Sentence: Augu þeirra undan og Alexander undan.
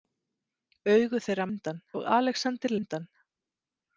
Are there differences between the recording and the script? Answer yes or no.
no